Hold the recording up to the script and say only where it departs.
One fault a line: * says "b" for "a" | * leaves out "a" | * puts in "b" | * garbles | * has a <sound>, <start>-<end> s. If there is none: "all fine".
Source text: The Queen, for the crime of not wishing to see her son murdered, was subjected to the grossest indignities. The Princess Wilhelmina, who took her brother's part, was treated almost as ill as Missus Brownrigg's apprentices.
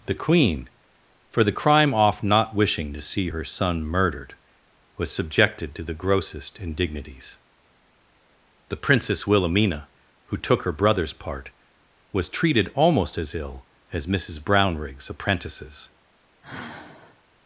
* says "off" for "of"
* has a sigh, 16.4-17.2 s